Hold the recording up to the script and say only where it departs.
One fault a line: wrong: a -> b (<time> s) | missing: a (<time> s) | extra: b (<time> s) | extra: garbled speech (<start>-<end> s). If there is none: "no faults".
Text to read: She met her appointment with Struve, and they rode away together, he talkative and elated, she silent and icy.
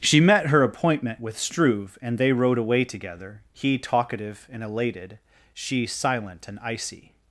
no faults